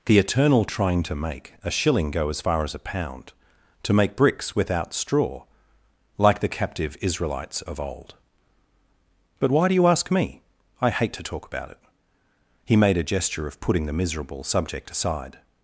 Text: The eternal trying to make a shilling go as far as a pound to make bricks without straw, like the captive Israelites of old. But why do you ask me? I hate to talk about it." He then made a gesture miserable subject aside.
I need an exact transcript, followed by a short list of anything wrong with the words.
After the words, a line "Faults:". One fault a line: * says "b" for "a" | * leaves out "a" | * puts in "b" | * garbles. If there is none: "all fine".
The eternal trying to make a shilling go as far as a pound to make bricks without straw, like the captive Israelites of old. But why do you ask me? I hate to talk about it." He made a gesture of putting the miserable subject aside.
Faults:
* leaves out "then"
* puts in "of putting the"